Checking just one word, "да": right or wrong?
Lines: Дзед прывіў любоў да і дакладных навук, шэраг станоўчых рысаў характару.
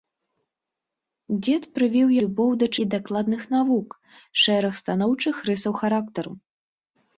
right